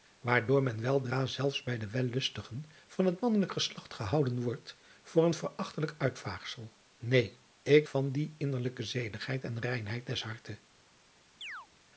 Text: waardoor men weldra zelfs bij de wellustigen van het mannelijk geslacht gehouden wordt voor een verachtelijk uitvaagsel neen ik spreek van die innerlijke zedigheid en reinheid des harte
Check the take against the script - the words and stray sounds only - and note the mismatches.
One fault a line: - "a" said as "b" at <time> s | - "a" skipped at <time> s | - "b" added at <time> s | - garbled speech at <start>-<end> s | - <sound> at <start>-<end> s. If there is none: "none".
- "spreek" skipped at 7.9 s
- chirp at 11.4-11.7 s